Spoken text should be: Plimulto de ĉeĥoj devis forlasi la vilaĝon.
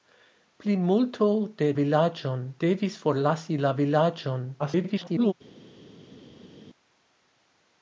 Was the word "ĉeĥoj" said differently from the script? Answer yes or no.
yes